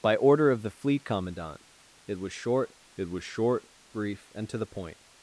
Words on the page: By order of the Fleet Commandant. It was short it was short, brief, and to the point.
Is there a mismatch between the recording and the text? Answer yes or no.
no